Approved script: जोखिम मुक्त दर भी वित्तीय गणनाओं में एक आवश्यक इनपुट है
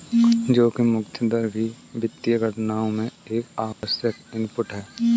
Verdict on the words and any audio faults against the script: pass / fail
fail